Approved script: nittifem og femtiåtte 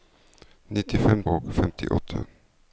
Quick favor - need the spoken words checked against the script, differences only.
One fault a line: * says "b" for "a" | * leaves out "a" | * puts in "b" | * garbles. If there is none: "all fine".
all fine